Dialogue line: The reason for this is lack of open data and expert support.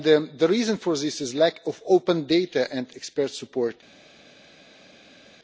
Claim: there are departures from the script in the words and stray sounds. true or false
false